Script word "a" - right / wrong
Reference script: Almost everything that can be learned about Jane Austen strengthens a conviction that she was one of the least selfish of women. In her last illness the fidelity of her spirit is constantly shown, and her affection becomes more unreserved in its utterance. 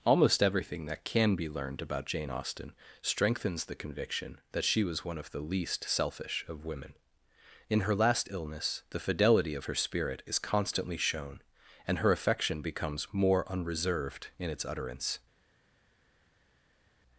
wrong